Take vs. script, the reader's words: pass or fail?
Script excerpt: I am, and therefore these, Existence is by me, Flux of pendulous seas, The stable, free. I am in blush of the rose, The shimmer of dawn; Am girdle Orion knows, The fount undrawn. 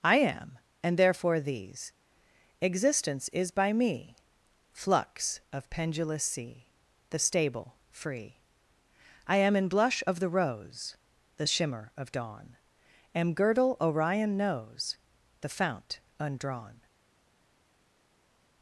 fail